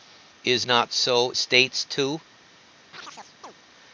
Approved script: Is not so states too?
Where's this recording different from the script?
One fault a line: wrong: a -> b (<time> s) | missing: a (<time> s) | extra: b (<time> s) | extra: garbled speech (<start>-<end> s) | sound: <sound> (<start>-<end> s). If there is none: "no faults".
sound: chirp (2.9-3.5 s)